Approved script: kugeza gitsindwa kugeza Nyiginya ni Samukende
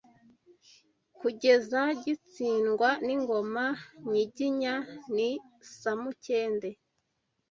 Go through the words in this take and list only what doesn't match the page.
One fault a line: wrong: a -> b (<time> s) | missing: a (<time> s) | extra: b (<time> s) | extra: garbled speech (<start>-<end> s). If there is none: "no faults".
wrong: kugeza -> n'ingoma (3.1 s)